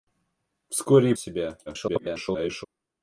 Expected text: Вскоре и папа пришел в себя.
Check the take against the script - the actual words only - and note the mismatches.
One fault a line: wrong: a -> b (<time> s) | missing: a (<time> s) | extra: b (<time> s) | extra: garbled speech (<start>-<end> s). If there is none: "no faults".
missing: папа пришел (1.1 s)
extra: garbled speech (1.7-2.7 s)